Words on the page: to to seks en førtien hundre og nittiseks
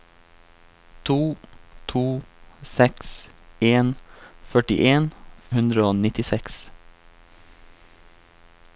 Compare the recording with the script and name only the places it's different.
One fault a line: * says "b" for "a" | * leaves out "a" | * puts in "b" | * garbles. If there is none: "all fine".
all fine